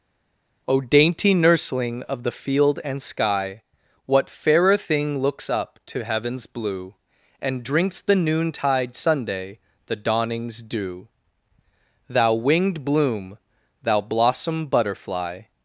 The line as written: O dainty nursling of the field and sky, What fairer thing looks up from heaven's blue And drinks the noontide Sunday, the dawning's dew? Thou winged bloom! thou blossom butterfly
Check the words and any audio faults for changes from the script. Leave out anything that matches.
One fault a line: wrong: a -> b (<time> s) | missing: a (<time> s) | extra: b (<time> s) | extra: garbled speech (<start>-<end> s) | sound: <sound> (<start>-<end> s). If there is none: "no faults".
wrong: from -> to (5.9 s)